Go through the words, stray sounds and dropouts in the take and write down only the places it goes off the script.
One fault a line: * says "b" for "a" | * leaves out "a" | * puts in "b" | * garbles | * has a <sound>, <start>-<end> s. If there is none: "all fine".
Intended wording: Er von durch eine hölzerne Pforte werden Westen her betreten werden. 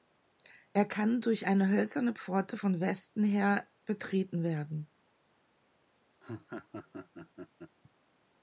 * says "kann" for "von"
* says "von" for "werden"
* has a laugh, 6.2-7.8 s